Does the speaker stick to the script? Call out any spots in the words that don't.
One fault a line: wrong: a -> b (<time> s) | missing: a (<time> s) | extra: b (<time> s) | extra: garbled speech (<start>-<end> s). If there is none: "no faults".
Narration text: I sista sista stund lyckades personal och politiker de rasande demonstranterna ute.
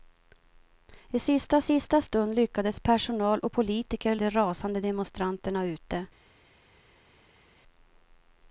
no faults